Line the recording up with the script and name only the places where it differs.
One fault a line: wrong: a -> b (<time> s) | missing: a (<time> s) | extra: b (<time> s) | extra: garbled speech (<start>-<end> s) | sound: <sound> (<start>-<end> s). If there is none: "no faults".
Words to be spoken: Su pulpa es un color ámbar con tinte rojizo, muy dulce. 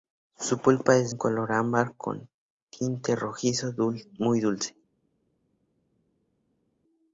no faults